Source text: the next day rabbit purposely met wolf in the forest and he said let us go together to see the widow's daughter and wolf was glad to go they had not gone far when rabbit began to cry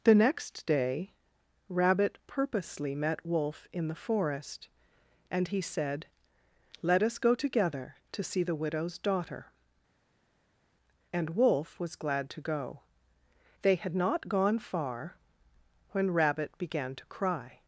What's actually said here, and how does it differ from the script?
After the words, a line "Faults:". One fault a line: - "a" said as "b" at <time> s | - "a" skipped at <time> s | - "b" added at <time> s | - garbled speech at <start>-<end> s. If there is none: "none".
the next day rabbit purposely met wolf in the forest and he said let us go together to see the widow's daughter and wolf was glad to go they had not gone far when rabbit began to cry
Faults:
none